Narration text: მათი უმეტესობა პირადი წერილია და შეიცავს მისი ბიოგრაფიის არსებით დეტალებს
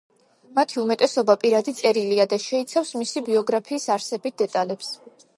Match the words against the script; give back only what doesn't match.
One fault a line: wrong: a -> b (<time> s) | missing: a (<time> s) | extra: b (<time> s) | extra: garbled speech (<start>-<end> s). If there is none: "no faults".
no faults